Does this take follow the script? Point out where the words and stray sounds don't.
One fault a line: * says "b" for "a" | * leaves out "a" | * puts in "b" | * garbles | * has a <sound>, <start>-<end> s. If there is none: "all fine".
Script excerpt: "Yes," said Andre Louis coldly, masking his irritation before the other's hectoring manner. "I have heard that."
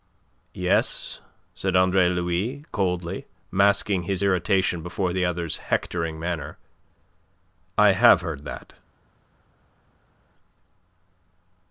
all fine